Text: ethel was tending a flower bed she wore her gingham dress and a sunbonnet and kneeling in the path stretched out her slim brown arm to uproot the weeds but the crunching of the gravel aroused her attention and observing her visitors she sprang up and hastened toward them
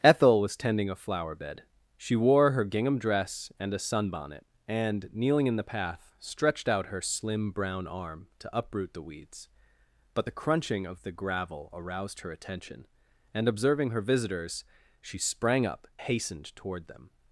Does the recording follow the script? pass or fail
fail